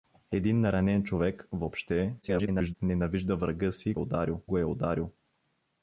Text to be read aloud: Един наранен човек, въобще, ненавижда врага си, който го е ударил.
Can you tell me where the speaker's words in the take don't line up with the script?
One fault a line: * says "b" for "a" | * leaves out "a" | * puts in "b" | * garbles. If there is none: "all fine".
* garbles
* says "ударил" for "който"